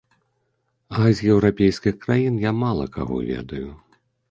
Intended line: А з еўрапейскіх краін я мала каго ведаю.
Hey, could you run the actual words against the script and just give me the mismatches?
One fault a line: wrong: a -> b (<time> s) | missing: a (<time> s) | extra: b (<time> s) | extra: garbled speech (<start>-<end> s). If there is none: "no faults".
no faults